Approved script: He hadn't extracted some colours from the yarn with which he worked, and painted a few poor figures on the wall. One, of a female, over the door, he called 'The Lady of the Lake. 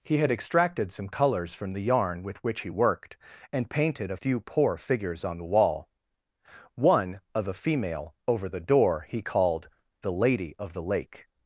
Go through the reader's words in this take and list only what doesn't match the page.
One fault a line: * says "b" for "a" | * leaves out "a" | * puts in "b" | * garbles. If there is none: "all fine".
* says "had" for "hadn't"